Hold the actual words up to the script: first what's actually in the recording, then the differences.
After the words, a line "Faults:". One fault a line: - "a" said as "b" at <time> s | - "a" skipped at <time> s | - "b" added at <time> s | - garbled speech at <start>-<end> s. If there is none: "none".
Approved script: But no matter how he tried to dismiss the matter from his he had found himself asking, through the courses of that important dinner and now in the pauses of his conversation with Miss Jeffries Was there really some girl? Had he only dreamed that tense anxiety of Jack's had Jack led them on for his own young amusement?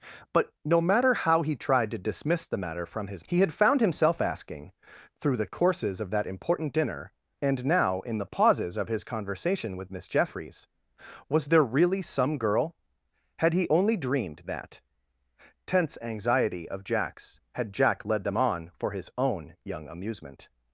But no matter how he tried to dismiss the matter from his he had found himself asking, through the courses of that important dinner and now in the pauses of his conversation with Miss Jeffries Was there really some girl? Had he only dreamed that tense anxiety of Jack's had Jack led them on for his own young amusement?
Faults:
none